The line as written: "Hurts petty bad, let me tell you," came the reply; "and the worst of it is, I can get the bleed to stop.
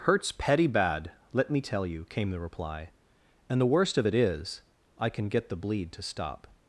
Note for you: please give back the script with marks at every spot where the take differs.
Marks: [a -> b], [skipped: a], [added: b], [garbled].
"Hurts petty bad, let me tell you," came the reply; "and the worst of it is, I can get the bleed to stop.